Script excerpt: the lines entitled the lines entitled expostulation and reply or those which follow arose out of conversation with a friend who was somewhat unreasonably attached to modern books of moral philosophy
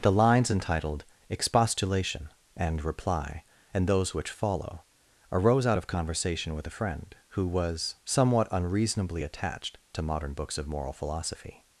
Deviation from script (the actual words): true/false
true